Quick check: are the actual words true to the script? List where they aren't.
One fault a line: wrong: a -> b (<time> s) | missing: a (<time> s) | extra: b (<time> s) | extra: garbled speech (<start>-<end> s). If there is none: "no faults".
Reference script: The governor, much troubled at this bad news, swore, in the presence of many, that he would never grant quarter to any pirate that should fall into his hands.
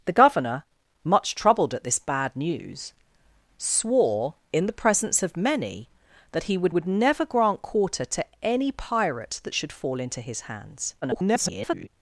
extra: would (6.7 s)
extra: garbled speech (11.0-11.9 s)